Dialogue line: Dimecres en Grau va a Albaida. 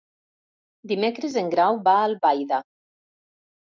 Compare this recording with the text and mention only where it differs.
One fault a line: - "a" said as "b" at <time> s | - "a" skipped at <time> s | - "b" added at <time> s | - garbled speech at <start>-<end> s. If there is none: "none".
none